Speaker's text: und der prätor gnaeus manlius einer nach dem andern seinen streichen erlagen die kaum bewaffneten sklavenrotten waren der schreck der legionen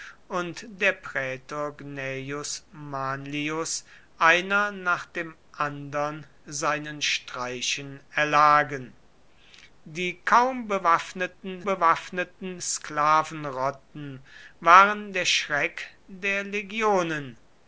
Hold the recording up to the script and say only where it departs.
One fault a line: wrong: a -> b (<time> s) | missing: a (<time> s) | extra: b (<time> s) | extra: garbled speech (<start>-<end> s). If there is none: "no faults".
extra: bewaffneten (11.6 s)